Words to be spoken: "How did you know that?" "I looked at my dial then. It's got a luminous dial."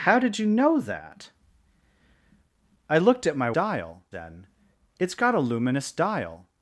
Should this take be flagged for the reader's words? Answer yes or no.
no